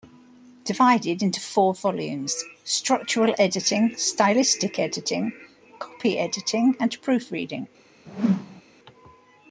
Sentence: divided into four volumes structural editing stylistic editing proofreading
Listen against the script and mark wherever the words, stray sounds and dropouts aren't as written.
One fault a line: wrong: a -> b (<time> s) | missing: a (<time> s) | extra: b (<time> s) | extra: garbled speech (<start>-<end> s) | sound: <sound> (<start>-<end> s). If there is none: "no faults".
extra: copy editing and (5.8 s)
sound: whoosh (8.1-8.6 s)